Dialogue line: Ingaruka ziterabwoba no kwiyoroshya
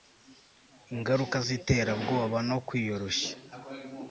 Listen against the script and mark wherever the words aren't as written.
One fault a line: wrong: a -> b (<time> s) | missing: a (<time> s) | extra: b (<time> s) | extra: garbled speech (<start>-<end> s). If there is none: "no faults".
no faults